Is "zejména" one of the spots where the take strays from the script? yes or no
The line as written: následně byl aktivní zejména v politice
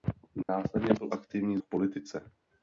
yes